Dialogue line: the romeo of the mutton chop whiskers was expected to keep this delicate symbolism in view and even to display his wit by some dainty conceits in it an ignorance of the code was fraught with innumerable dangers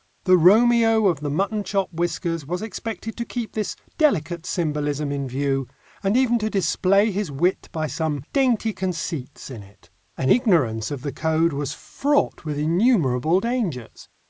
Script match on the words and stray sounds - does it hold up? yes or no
yes